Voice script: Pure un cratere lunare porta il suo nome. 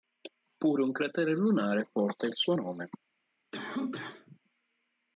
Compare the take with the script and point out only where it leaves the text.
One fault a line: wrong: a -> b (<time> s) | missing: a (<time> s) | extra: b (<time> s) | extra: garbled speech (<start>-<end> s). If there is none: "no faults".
no faults